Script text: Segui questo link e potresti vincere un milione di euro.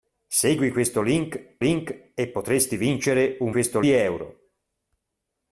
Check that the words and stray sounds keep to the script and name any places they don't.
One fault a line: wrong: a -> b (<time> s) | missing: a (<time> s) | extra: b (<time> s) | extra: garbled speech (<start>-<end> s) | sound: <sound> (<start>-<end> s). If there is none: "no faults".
extra: link (1.6 s)
wrong: milione -> questo (3.5 s)